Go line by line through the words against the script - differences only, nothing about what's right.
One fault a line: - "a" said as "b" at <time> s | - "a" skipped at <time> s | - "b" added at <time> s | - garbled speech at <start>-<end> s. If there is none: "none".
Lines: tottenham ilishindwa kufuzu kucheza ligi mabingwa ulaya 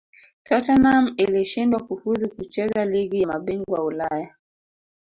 none